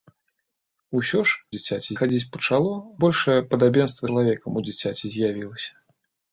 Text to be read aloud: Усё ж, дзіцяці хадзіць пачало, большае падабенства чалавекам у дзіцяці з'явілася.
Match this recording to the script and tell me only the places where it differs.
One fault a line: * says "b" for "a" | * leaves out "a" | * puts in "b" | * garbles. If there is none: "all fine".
all fine